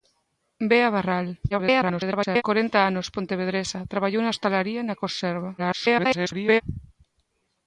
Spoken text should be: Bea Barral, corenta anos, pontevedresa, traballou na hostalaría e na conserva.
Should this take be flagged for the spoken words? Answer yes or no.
yes